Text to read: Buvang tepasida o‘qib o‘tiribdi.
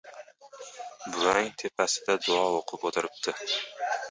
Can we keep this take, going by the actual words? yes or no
no